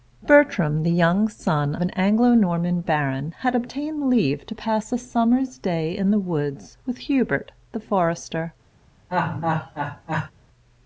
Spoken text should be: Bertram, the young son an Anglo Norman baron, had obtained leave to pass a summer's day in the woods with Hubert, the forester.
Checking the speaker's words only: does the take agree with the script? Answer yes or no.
yes